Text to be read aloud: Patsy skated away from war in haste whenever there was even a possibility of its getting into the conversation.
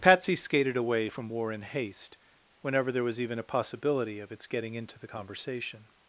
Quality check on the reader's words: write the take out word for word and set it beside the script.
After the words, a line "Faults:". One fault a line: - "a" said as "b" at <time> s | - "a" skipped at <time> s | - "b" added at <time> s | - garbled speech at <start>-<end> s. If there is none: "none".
Patsy skated away from war in haste whenever there was even a possibility of its getting into the conversation.
Faults:
none